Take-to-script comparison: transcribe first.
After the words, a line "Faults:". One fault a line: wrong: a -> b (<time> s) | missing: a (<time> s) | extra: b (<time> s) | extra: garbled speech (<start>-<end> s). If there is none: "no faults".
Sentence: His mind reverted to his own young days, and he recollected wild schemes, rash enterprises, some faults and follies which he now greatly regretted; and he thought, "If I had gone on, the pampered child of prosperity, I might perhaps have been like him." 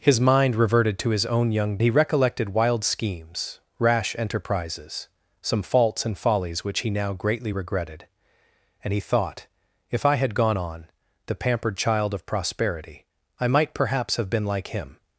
His mind reverted to his own young he recollected wild schemes, rash enterprises, some faults and follies which he now greatly regretted; and he thought, "If I had gone on, the pampered child of prosperity, I might perhaps have been like him."
Faults:
missing: days and (1.8 s)